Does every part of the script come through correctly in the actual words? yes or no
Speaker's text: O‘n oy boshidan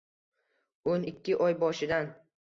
no